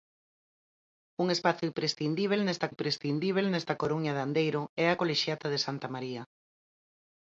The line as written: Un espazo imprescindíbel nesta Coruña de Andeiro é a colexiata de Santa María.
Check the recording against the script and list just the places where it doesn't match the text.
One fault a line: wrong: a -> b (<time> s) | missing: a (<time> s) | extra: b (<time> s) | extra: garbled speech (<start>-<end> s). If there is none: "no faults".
extra: imprescindíbel nesta (2.7 s)